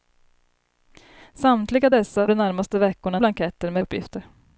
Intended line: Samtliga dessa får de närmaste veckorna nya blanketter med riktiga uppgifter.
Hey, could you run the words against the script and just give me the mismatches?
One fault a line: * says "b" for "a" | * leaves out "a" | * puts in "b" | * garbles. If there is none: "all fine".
* leaves out "får"
* leaves out "nya"
* leaves out "riktiga"